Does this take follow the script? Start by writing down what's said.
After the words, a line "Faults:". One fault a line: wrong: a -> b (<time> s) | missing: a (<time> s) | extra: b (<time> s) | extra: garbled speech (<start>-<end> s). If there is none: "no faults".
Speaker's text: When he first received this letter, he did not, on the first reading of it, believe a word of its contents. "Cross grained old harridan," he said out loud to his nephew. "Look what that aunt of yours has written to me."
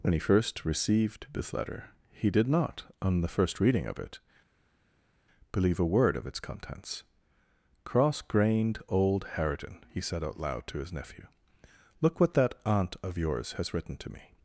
When he first received this letter, he did not, on the first reading of it, believe a word of its contents. "Cross grained old harridan," he said out loud to his nephew. "Look what that aunt of yours has written to me."
Faults:
no faults